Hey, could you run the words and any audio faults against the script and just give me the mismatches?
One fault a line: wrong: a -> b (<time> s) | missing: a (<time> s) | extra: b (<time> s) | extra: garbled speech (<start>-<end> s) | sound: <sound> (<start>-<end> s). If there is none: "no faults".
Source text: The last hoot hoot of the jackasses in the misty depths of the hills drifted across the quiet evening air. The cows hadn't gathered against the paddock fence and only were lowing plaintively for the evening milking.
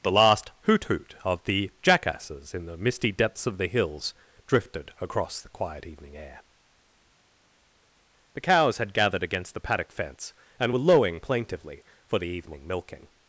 wrong: hadn't -> had (8.8 s)
missing: only (10.7 s)